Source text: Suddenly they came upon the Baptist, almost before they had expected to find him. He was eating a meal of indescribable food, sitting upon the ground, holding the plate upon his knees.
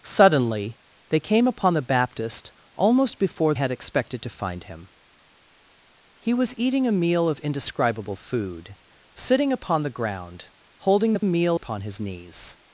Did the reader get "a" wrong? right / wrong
right